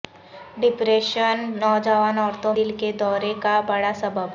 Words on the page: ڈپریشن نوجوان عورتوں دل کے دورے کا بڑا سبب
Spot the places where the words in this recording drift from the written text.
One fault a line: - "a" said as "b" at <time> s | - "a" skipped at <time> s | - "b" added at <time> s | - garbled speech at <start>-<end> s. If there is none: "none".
none